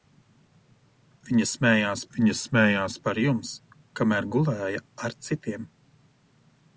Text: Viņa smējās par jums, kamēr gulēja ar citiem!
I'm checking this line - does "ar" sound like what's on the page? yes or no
yes